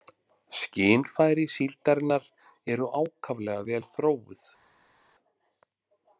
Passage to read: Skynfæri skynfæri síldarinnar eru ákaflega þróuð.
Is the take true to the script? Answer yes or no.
no